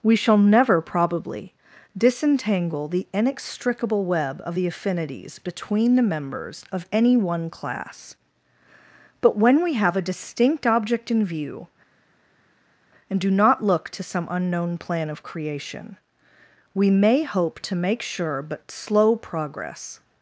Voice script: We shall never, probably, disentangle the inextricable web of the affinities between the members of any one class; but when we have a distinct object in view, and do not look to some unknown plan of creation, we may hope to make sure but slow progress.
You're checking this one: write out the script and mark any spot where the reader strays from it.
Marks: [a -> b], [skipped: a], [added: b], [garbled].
We shall never, probably, disentangle the inextricable web of the affinities between the members of any one class; but when we have a distinct object in view, and do not look to some unknown plan of creation, we may hope to make sure but slow progress.